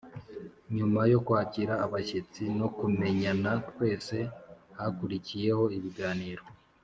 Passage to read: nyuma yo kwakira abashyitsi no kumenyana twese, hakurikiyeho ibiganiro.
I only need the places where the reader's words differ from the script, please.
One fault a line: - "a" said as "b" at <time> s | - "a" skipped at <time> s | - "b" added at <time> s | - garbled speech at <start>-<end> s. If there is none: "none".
none